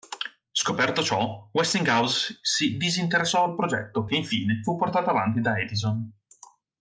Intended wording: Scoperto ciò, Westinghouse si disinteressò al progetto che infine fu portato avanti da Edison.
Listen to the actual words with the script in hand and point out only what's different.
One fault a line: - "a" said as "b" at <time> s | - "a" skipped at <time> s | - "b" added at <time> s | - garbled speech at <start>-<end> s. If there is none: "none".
none